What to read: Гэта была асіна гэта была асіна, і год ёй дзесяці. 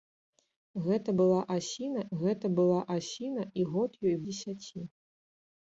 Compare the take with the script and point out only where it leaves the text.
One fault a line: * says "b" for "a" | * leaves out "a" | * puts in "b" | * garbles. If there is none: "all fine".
all fine